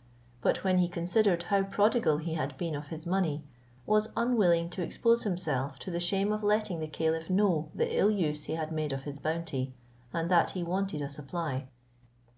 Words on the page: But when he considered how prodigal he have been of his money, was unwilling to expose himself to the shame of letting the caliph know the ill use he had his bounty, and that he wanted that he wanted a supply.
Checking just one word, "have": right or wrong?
wrong